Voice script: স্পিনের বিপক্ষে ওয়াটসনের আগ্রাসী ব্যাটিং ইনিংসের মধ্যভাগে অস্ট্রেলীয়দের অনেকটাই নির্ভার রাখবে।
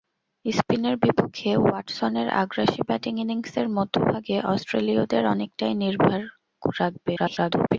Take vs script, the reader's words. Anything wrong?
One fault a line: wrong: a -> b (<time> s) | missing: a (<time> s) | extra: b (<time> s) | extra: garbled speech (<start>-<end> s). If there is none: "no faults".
extra: garbled speech (7.2-7.8 s)